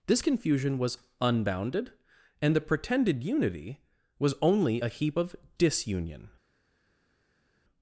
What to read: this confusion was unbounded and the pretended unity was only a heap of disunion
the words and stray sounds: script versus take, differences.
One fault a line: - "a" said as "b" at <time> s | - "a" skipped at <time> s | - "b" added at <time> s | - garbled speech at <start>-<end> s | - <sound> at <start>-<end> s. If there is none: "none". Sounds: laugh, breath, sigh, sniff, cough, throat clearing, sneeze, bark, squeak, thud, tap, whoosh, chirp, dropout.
none